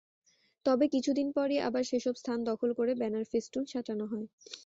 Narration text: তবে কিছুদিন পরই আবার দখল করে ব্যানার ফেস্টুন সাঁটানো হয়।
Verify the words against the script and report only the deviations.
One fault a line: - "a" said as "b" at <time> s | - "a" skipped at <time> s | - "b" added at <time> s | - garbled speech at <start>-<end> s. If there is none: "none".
- "সেসব স্থান" added at 1.9 s